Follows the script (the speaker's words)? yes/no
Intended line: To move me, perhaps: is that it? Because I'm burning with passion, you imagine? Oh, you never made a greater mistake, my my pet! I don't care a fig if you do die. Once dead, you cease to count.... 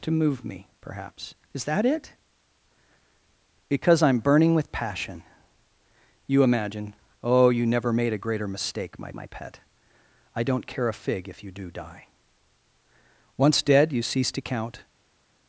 yes